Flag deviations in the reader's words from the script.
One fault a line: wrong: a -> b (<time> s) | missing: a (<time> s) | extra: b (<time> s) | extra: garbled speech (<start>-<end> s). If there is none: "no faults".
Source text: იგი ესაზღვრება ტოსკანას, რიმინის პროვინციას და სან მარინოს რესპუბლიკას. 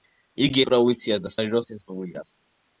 missing: ესაზღვრება ტოსკანას რიმინის (0.6 s)
missing: სან (1.3 s)